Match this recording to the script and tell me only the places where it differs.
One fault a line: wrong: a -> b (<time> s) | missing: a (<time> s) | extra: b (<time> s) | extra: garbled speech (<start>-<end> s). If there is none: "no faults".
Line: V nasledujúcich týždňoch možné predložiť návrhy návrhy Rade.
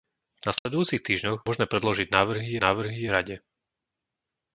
no faults